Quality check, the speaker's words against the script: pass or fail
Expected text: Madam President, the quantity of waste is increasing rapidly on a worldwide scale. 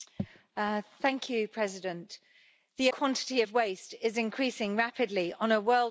pass